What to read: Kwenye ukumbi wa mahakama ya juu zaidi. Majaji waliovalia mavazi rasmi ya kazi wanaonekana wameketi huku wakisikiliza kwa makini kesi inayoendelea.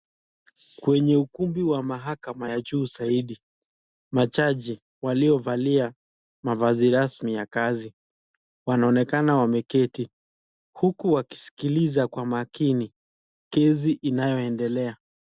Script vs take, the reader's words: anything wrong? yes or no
no